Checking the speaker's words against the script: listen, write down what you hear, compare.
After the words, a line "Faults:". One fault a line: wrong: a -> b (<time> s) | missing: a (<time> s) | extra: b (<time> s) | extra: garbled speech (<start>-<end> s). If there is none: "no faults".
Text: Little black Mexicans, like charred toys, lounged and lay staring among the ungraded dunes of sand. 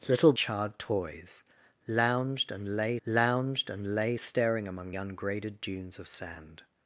Little charred toys, lounged and lay lounged and lay staring among ungraded dunes of sand.
Faults:
wrong: black Mexicans like charred toys -> charred toys lounged and lay (0.3 s)
missing: the (4.9 s)